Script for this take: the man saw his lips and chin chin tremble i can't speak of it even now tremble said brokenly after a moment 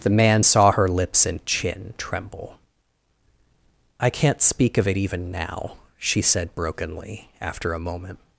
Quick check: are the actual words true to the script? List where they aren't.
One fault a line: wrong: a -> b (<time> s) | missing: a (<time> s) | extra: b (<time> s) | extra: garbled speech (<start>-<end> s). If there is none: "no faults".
wrong: his -> her (0.7 s)
missing: chin (1.9 s)
wrong: tremble -> she (6.0 s)